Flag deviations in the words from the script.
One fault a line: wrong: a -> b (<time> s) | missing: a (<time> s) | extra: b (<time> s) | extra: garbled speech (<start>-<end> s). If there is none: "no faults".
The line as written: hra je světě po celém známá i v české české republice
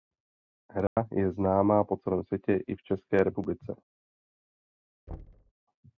wrong: světě -> známá (1.3 s)
wrong: známá -> světě (2.2 s)
missing: české (3.2 s)